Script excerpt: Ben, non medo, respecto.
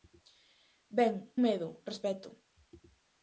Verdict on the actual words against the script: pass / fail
fail